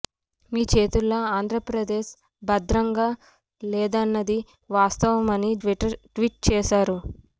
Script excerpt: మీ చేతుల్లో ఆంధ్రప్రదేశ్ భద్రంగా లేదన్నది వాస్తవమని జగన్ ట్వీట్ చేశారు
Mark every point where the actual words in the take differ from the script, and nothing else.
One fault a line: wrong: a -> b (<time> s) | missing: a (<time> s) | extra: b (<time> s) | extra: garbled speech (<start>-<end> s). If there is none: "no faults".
missing: జగన్ (5.5 s)